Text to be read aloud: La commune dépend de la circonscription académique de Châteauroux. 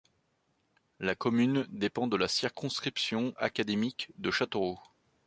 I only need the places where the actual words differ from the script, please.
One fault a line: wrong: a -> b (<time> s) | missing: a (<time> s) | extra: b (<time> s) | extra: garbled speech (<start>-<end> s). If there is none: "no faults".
no faults